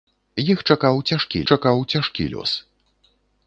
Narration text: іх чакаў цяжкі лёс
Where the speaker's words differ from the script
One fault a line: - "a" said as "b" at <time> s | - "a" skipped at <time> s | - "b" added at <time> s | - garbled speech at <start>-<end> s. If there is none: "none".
- "чакаў цяжкі" added at 1.5 s